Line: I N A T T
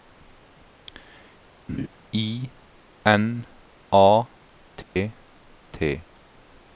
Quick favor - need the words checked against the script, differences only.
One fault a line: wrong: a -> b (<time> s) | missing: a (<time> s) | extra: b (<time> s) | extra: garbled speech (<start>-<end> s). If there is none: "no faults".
no faults